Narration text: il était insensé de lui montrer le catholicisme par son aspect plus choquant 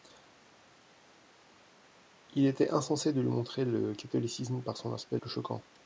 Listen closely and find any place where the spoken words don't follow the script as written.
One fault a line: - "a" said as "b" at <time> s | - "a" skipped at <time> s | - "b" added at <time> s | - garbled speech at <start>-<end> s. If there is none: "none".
none